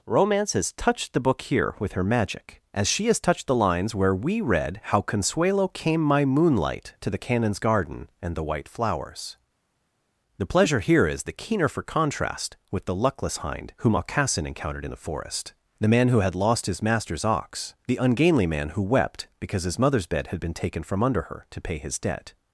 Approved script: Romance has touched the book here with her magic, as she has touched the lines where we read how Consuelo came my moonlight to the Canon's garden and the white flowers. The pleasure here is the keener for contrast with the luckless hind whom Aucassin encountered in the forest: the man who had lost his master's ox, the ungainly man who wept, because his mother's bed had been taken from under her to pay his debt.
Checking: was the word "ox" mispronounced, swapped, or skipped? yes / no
no